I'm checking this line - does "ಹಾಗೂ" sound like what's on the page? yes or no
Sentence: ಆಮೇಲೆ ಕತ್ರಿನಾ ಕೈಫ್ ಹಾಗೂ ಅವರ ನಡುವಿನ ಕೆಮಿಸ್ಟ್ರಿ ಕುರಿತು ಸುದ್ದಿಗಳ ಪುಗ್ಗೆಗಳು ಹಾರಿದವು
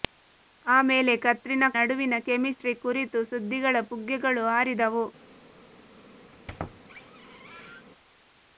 no